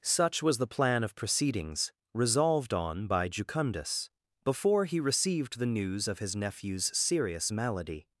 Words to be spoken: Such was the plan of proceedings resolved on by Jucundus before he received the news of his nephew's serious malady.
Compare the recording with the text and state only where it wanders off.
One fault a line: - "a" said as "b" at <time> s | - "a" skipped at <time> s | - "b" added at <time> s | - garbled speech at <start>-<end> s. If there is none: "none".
none